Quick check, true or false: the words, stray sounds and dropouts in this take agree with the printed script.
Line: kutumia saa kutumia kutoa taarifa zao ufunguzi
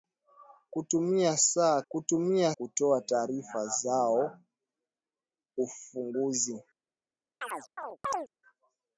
false